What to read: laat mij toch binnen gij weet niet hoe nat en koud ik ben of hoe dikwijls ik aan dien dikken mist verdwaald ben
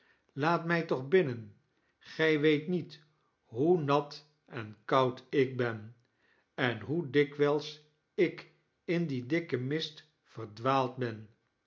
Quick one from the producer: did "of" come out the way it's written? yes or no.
no